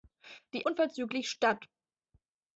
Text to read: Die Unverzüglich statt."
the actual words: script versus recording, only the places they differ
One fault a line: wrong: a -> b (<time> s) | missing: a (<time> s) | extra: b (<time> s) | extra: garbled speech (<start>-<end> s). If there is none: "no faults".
no faults